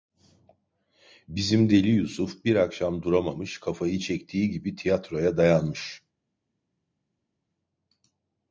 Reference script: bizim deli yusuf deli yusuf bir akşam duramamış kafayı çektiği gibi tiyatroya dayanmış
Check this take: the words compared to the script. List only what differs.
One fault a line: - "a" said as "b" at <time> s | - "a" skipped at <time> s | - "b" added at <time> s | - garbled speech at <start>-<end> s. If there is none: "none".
- "deli yusuf" skipped at 2.5 s